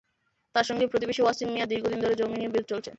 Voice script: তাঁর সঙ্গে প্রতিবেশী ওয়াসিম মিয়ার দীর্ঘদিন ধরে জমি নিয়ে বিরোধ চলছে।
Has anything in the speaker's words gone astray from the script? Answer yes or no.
no